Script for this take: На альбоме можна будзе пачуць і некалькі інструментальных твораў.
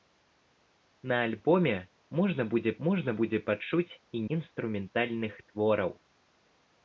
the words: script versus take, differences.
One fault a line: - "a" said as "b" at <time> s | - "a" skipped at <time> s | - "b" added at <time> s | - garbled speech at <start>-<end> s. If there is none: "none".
- "можна будзе" added at 2.9 s
- "некалькі" skipped at 4.2 s